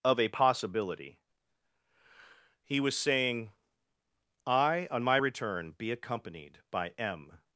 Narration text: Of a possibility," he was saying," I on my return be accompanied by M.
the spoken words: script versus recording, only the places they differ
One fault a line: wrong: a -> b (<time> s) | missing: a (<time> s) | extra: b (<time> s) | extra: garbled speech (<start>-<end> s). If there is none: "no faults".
no faults